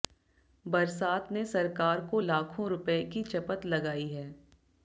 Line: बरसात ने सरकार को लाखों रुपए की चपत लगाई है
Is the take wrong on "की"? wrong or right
right